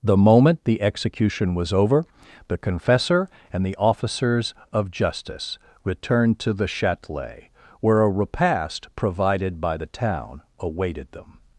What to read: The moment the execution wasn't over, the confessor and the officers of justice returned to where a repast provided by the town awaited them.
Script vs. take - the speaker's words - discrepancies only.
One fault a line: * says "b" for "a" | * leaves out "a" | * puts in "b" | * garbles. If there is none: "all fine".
* says "was" for "wasn't"
* puts in "the Châtelet"